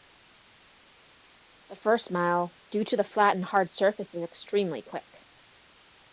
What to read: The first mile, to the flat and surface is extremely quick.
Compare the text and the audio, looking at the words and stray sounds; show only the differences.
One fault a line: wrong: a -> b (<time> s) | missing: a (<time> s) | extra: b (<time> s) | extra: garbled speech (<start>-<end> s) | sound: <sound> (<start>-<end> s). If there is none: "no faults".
extra: due (2.7 s)
extra: hard (3.4 s)